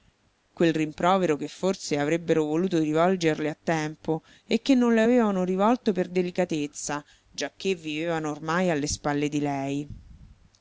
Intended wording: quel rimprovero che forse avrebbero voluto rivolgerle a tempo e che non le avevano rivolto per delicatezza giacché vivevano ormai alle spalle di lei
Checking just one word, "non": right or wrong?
right